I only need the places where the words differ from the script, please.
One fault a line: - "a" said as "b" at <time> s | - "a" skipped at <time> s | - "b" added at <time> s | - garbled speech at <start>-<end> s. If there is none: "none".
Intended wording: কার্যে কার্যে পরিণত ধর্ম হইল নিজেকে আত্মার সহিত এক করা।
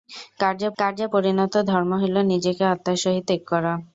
none